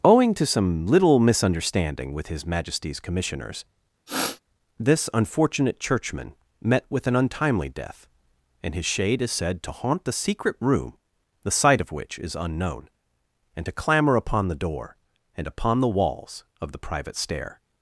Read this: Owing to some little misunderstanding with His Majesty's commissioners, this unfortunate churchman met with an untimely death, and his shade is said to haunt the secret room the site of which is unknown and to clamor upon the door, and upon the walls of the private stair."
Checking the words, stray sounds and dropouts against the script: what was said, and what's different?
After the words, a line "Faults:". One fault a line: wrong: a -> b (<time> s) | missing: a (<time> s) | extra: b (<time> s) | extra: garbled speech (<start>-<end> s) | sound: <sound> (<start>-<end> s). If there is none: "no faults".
Owing to some little misunderstanding with His Majesty's commissioners, this unfortunate churchman met with an untimely death, and his shade is said to haunt the secret room the site of which is unknown and to clamor upon the door, and upon the walls of the private stair."
Faults:
sound: sniff (4.1-4.4 s)